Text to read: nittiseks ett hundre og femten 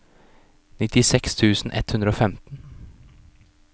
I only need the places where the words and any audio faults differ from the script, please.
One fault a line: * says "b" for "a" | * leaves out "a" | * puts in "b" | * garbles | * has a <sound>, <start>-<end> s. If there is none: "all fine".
* puts in "tusen"